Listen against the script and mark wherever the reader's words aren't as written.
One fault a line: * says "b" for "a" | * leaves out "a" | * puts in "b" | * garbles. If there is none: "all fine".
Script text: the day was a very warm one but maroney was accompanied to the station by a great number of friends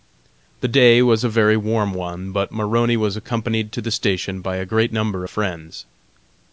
all fine